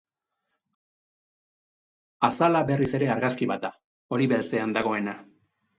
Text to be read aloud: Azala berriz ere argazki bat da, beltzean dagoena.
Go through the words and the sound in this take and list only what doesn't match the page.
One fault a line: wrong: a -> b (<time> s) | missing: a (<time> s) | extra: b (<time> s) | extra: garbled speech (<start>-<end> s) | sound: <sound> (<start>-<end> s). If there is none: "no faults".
extra: hori (4.2 s)